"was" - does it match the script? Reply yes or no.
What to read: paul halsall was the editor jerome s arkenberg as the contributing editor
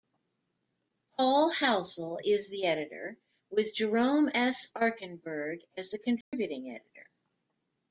no